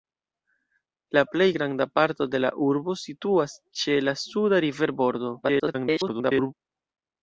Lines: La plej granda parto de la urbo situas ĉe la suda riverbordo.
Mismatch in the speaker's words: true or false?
true